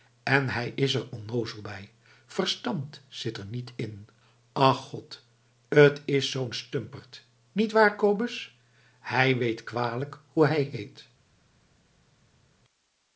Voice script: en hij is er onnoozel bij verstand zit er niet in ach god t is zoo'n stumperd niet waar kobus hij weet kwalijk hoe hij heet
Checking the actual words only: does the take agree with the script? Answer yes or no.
yes